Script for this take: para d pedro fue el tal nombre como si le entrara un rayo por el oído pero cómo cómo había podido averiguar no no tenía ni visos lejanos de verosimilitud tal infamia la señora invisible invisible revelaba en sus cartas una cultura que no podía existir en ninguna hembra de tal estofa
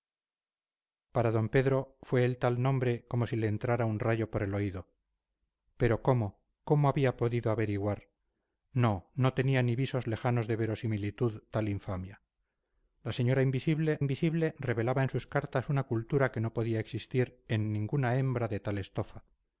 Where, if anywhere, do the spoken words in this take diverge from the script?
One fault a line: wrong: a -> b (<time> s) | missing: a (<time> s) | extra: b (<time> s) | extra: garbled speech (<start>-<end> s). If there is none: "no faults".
no faults